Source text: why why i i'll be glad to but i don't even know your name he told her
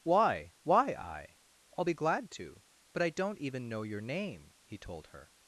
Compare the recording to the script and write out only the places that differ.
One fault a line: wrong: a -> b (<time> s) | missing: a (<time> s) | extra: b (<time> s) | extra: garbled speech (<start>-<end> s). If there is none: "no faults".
no faults